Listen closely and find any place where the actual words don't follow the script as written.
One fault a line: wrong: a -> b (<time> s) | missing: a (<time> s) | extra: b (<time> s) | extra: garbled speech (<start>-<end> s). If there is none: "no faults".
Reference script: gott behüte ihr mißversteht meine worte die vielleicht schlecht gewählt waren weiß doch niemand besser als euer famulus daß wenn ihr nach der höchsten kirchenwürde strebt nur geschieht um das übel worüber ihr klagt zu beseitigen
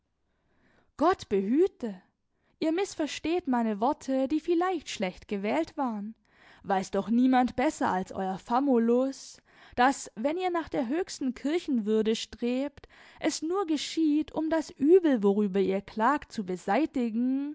extra: es (13.2 s)